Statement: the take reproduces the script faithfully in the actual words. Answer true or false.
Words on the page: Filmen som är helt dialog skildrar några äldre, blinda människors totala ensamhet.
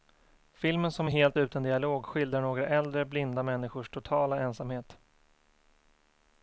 false